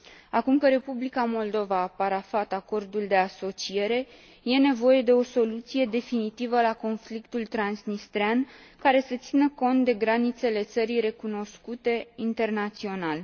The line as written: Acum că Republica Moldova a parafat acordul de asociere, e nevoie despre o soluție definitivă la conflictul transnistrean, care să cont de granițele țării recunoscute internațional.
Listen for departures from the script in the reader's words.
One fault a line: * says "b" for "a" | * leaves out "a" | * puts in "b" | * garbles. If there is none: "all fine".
* says "de" for "despre"
* puts in "țină"